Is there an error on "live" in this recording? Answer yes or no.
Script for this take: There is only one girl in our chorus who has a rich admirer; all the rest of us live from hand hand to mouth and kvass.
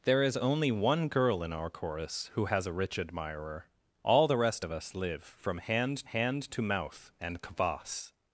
no